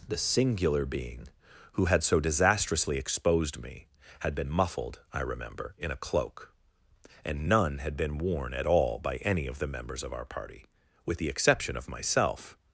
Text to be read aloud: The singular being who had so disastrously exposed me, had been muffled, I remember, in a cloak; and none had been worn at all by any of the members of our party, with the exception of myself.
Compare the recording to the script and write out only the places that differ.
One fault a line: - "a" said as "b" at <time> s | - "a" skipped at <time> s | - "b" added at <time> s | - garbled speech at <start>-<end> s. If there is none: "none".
none